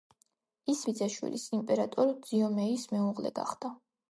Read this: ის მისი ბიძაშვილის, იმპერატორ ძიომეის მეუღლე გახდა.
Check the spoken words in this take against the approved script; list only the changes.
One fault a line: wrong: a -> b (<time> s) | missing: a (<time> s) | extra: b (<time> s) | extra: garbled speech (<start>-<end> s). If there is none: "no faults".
missing: მისი (0.8 s)